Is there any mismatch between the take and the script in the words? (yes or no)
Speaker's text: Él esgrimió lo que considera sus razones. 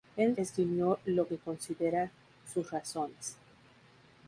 no